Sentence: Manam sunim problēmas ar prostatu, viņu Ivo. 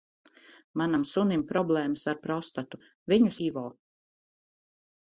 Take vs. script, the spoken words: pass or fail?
pass